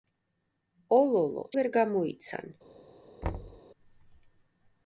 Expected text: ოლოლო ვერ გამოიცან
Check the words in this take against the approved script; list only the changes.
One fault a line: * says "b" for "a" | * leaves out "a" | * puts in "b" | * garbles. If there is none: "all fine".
all fine